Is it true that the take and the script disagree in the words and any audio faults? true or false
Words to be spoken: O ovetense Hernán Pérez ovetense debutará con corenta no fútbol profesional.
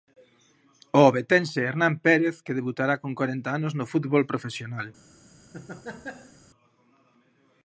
true